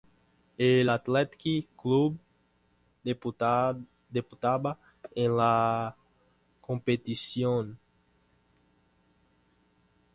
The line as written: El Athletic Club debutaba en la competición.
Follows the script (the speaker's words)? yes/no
yes